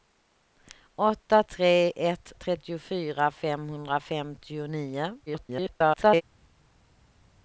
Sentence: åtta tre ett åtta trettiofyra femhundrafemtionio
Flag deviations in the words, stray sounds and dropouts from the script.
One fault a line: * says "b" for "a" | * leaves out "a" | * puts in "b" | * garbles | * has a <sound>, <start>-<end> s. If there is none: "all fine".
* leaves out "åtta"
* garbles